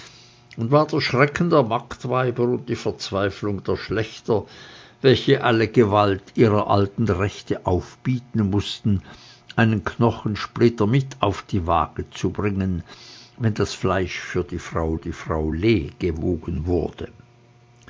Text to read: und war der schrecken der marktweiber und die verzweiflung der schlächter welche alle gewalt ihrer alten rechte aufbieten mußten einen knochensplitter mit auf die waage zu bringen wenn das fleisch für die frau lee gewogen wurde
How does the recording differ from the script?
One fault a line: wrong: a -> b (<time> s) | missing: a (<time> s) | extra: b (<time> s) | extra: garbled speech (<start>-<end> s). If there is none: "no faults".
extra: die frau (15.0 s)